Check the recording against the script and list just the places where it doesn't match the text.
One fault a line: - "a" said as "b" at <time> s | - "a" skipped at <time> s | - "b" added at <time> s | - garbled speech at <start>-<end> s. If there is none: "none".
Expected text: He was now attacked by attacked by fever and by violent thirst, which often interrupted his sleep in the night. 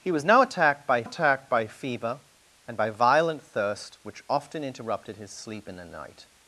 none